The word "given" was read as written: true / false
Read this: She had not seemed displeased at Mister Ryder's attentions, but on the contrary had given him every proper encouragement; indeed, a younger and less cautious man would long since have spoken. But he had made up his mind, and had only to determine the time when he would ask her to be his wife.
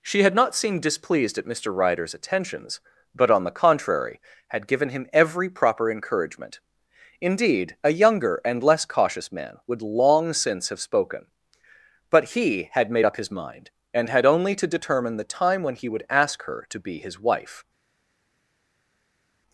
true